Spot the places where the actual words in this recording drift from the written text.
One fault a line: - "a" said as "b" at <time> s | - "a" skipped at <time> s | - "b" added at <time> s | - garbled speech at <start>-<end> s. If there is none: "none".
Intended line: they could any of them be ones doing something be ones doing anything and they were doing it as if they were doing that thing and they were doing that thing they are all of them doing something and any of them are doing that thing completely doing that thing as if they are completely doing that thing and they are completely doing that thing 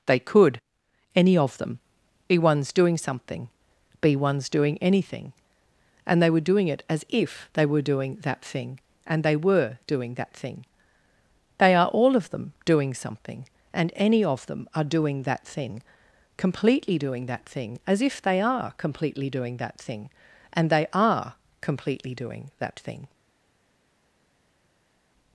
none